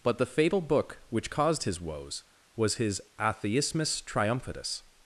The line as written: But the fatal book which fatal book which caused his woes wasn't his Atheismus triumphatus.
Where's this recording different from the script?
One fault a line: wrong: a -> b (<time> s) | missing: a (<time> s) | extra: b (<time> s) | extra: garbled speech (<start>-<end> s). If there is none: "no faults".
missing: fatal book which (1.3 s)
wrong: wasn't -> was (2.5 s)